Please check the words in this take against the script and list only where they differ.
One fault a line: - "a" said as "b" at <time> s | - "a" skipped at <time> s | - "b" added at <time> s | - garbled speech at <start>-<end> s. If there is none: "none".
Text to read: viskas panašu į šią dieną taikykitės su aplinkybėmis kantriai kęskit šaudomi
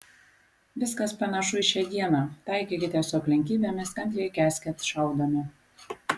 none